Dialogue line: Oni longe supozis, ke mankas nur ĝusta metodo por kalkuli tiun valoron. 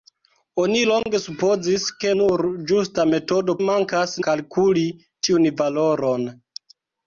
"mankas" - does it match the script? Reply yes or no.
no